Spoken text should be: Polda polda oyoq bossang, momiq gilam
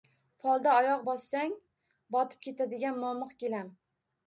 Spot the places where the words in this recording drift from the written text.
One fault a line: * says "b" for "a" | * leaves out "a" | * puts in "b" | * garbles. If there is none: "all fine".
* leaves out "polda"
* puts in "botib ketadigan"